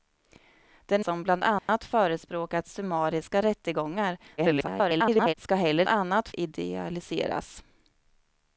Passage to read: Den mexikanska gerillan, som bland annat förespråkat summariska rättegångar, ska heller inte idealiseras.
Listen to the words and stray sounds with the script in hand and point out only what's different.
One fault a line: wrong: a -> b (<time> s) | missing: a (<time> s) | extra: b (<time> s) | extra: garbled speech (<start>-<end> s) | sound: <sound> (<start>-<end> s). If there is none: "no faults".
missing: mexikanska gerillan (1.0 s)
sound: dropout (1.6-1.7 s)
extra: garbled speech (4.4-5.3 s)
wrong: inte -> annat (5.9 s)